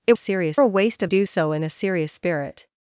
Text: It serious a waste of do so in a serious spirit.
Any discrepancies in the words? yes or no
no